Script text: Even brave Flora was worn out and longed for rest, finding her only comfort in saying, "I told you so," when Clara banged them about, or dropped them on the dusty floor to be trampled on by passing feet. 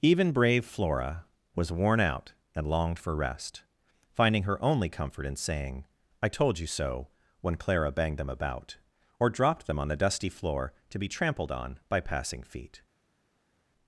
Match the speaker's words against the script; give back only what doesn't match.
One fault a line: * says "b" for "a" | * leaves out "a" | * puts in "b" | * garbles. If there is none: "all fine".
all fine